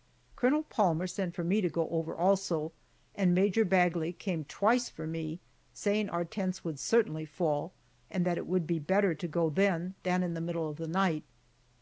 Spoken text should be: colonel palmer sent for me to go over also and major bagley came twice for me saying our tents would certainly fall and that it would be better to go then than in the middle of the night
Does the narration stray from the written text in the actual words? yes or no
no